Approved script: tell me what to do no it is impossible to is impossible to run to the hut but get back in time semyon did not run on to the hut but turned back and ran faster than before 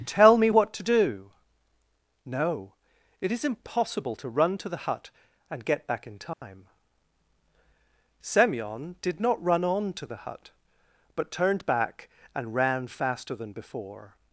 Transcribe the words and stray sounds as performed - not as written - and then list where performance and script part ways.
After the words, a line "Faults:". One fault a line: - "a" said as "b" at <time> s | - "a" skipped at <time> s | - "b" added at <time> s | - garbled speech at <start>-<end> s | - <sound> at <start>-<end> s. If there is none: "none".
tell me what to do no it is impossible to run to the hut and get back in time semyon did not run on to the hut but turned back and ran faster than before
Faults:
- "is impossible to" skipped at 4.3 s
- "but" said as "and" at 5.5 s
- dropout at 6.3-6.4 s